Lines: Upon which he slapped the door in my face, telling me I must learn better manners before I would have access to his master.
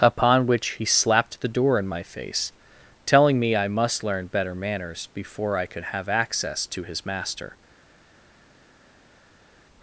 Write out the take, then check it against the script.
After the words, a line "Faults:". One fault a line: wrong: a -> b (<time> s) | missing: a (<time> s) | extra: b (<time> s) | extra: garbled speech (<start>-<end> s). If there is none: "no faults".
Upon which he slapped the door in my face, telling me I must learn better manners before I could have access to his master.
Faults:
wrong: would -> could (5.7 s)